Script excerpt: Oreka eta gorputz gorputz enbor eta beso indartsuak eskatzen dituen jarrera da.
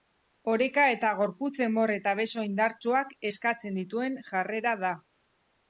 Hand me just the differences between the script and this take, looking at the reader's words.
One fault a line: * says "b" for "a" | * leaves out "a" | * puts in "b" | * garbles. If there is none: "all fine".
* leaves out "gorputz"